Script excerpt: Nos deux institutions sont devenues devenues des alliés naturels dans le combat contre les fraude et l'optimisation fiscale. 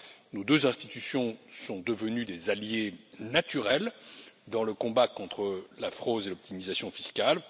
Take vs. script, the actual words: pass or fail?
fail